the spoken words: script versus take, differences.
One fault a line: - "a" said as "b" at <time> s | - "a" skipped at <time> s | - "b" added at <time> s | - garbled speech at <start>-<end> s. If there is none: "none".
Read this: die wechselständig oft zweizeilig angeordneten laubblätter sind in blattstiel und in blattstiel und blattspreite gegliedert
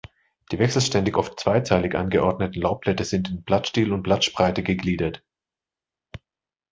- "in blattstiel und" skipped at 4.0 s